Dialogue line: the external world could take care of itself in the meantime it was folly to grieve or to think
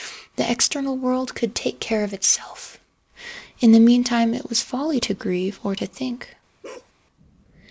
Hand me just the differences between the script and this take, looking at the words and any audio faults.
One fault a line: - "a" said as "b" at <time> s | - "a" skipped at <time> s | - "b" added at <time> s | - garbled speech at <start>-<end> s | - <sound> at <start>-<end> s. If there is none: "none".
- bark at 6.6-6.9 s